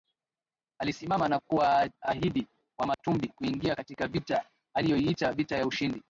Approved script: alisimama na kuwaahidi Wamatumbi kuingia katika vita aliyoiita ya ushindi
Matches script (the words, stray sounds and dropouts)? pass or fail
fail